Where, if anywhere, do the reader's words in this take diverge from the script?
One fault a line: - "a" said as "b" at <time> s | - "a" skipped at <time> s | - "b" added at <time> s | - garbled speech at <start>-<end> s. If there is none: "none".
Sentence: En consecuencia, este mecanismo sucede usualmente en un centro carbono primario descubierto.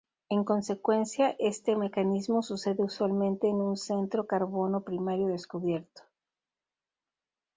none